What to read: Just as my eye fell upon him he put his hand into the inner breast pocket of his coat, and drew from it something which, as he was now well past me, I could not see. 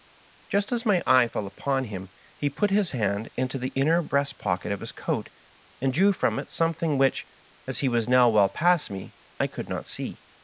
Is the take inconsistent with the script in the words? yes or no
no